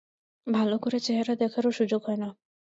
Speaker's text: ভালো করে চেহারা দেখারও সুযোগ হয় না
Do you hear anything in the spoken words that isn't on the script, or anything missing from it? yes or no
no